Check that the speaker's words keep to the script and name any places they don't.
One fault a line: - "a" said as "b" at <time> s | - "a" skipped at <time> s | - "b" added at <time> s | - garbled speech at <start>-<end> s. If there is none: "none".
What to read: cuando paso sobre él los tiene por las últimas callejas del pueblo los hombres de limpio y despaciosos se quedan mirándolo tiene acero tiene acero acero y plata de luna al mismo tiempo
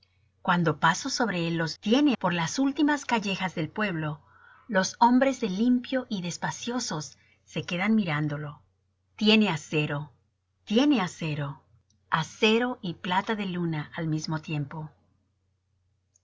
none